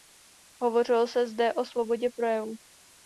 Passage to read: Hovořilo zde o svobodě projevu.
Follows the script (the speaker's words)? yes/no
no